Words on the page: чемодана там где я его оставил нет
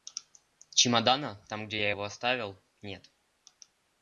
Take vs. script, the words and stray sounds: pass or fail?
pass